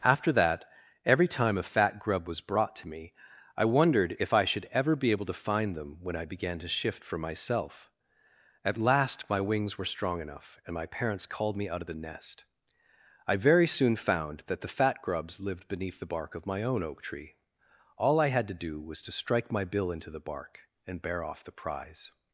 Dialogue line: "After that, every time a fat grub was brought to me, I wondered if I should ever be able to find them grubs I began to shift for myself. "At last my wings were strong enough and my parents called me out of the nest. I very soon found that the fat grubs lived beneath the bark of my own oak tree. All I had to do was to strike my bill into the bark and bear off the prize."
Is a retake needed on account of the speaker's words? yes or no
yes